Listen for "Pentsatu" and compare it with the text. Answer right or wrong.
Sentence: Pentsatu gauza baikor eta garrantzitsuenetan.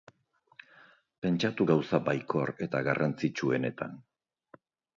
right